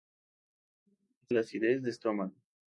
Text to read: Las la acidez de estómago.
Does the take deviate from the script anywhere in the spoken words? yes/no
no